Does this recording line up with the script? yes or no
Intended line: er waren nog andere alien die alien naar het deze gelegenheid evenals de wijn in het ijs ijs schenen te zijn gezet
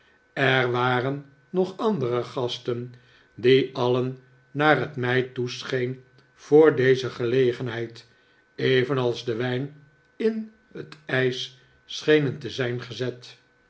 no